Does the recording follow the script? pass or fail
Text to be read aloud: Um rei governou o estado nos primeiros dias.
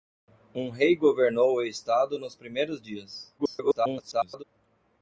fail